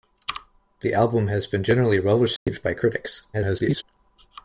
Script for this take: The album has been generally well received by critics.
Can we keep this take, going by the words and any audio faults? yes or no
no